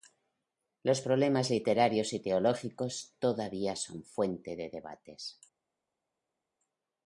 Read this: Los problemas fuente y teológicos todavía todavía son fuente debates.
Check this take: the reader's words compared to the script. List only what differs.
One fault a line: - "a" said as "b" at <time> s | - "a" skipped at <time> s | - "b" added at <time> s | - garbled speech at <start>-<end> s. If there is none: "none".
- "fuente" said as "literarios" at 1.5 s
- "todavía" skipped at 3.8 s
- "de" added at 4.6 s